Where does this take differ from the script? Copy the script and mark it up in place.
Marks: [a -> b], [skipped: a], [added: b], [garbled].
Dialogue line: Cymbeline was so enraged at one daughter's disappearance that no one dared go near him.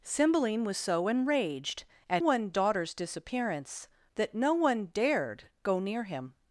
Cymbeline was so enraged at one daughter's disappearance that no one dared go near him.